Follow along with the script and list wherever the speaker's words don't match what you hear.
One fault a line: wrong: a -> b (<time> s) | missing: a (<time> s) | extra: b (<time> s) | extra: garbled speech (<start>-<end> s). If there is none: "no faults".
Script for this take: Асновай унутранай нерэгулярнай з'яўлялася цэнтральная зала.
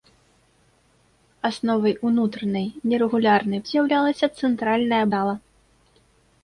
no faults